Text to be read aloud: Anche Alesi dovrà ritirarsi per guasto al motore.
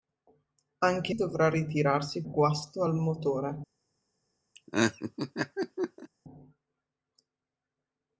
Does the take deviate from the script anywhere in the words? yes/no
yes